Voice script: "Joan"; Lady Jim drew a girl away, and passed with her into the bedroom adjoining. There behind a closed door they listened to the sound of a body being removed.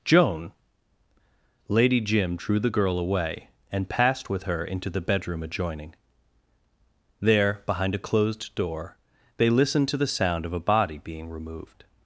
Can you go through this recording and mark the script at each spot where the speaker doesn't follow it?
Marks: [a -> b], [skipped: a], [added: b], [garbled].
"Joan"; Lady Jim drew [a -> the] girl away, and passed with her into the bedroom adjoining. There behind a closed door they listened to the sound of a body being removed.